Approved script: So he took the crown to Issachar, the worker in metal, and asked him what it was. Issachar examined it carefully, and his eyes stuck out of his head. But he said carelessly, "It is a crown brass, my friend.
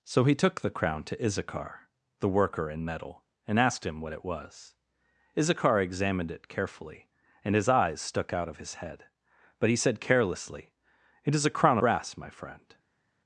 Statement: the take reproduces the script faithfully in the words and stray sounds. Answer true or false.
true